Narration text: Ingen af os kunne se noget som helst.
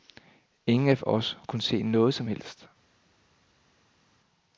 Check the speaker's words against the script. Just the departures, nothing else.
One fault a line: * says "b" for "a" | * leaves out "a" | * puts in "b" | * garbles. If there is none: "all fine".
all fine